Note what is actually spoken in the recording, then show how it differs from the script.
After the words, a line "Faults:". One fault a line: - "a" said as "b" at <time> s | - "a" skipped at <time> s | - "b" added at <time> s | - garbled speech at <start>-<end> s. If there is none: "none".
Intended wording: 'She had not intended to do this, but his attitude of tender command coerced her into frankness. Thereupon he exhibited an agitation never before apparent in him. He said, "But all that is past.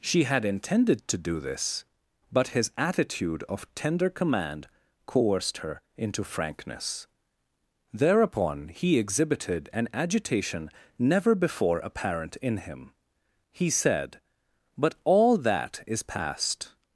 'She had intended to do this, but his attitude of tender command coerced her into frankness. Thereupon he exhibited an agitation never before apparent in him. He said, "But all that is past.
Faults:
- "not" skipped at 0.4 s